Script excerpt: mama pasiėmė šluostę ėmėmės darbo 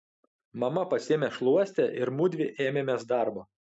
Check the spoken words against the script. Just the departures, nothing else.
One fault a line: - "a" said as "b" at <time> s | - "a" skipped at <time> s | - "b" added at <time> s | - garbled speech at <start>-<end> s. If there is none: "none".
- "ir mudvi" added at 2.0 s